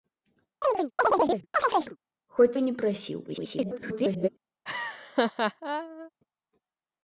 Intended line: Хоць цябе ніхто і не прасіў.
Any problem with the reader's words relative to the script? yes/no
yes